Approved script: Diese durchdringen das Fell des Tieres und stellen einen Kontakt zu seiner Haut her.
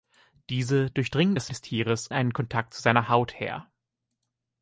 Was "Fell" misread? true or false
true